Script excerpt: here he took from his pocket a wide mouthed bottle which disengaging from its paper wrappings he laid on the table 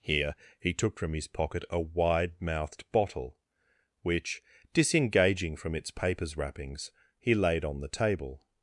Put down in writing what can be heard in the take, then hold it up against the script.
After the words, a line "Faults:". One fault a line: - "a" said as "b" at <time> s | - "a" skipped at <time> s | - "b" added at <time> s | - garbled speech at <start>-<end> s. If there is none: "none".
here he took from his pocket a wide mouthed bottle which disengaging from its papers wrappings he laid on the table
Faults:
- "paper" said as "papers" at 5.9 s